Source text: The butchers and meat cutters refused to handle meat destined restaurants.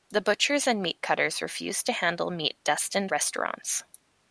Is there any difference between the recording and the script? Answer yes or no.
no